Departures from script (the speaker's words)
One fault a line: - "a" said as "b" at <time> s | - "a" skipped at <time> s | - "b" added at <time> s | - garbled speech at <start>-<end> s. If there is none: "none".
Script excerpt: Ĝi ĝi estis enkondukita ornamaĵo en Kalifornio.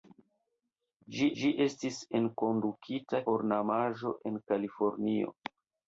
none